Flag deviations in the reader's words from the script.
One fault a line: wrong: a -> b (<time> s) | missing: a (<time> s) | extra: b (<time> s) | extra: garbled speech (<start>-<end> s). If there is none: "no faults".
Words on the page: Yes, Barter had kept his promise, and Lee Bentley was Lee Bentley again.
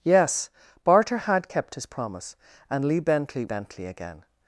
missing: was Lee (3.4 s)